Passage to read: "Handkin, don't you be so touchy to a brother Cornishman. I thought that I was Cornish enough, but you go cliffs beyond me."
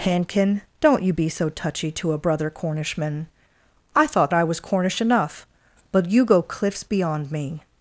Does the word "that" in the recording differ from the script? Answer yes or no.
yes